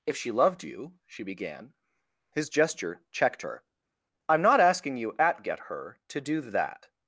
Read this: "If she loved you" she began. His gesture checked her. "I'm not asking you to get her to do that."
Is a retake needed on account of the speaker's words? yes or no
yes